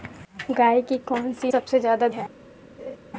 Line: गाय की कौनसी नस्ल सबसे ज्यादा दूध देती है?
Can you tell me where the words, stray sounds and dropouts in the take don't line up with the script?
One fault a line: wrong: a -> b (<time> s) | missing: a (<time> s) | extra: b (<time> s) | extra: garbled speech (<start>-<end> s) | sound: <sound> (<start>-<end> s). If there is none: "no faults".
missing: नस्ल (1.5 s)
missing: दूध देती (2.1 s)
sound: laugh (2.8-3.0 s)